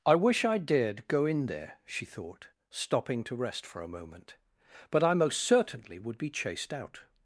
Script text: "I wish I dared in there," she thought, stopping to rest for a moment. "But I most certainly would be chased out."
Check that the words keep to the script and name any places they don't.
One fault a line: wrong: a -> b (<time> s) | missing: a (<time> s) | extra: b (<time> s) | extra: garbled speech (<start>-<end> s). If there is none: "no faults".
extra: go (1.1 s)